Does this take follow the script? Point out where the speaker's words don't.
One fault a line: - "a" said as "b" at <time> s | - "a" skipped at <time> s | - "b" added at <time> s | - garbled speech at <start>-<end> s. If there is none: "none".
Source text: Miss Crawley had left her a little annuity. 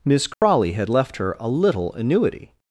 none